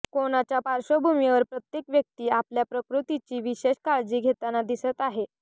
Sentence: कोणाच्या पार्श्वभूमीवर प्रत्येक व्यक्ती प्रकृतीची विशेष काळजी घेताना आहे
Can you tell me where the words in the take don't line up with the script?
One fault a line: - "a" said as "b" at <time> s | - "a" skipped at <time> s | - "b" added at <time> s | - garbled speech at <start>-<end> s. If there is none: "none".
- "आपल्या" added at 2.3 s
- "दिसत" added at 4.6 s